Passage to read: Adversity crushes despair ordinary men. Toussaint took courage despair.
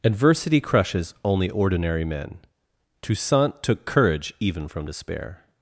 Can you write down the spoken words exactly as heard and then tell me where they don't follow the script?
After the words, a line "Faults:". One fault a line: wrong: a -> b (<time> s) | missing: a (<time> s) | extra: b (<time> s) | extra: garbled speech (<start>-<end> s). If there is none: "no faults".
Adversity crushes only ordinary men. Toussaint took courage even from despair.
Faults:
wrong: despair -> only (1.2 s)
extra: even from (4.4 s)